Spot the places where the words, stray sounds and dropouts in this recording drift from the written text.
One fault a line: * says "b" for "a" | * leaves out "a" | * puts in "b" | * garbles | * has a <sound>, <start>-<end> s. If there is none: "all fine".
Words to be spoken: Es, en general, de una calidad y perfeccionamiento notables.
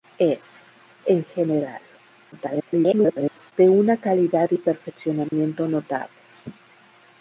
* garbles
* has a dropout, 5.3-5.3 s